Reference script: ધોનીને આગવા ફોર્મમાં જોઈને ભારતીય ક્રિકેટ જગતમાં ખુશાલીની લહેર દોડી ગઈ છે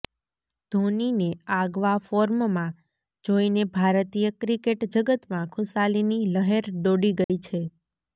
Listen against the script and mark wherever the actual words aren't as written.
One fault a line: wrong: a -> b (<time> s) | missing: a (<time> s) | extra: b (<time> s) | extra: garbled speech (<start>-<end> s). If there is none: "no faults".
no faults